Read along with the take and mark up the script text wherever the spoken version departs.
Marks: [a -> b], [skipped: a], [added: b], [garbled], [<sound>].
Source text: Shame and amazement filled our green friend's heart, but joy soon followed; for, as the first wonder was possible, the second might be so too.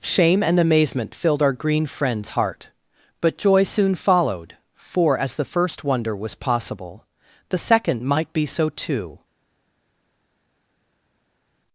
Shame and amazement filled our green friend's heart, but joy soon followed; for, as the first wonder was possible, the second might be so too.